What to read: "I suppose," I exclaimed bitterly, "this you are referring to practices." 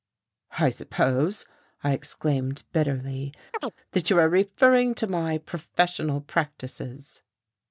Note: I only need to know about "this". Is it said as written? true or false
false